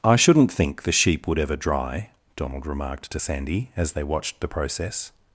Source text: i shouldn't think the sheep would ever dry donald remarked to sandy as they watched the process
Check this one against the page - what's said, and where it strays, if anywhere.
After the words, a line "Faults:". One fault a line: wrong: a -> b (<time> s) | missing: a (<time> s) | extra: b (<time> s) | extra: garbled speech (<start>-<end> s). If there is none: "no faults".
i shouldn't think the sheep would ever dry donald remarked to sandy as they watched the process
Faults:
no faults